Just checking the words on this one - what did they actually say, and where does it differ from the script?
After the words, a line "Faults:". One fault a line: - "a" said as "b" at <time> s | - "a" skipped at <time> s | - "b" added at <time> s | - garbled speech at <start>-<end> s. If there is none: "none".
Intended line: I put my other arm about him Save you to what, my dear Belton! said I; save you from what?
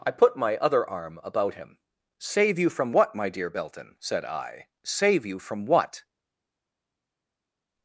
I put my other arm about him Save you from what, my dear Belton! said I; save you from what?
Faults:
- "to" said as "from" at 2.7 s